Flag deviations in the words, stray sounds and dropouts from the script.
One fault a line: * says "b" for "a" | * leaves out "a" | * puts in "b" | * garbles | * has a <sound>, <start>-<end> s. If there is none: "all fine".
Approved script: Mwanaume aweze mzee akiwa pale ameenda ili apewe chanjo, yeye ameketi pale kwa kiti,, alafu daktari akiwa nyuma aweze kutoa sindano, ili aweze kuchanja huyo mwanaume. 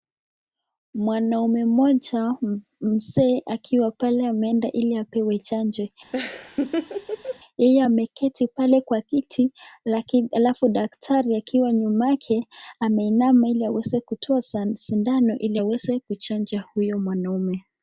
* says "mmoja" for "aweze"
* has a laugh, 6.1-7.4 s
* puts in "yake ameinama ili"